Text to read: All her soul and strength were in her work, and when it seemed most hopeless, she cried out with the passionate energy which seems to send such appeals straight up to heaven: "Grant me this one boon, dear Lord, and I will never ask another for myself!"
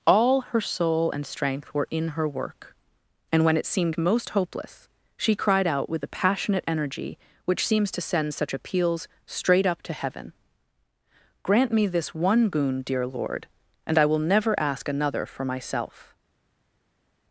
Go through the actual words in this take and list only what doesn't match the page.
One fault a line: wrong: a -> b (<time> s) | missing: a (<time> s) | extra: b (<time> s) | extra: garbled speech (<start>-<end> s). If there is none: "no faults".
no faults